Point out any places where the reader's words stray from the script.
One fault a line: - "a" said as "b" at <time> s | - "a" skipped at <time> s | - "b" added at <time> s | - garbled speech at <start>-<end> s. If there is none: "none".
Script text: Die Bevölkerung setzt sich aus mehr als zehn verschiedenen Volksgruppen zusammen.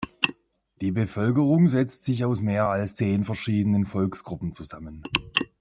none